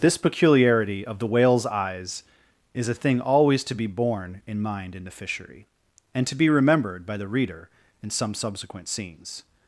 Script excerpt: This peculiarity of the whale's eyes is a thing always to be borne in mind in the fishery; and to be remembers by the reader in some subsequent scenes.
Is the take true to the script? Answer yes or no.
no